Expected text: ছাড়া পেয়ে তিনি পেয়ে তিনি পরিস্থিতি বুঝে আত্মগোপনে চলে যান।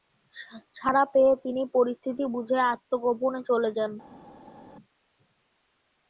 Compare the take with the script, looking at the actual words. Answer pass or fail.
fail